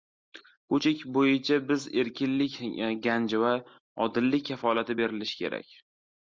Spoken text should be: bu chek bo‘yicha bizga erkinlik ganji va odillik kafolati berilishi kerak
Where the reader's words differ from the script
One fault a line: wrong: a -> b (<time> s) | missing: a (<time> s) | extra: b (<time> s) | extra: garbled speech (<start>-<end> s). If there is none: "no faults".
no faults